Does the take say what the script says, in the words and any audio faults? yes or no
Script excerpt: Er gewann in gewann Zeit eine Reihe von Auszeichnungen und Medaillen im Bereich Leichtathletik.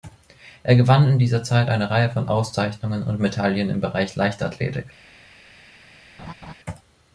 no